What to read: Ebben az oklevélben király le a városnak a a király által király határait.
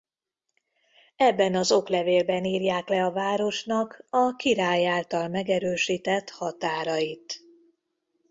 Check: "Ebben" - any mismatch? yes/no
no